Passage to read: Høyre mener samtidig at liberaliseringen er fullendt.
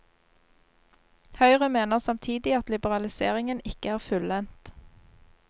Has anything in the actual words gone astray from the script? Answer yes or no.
yes